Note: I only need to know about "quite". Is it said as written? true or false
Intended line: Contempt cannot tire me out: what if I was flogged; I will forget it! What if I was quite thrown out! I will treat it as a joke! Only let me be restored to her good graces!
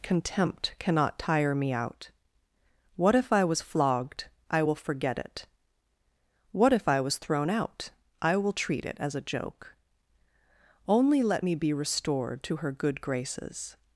false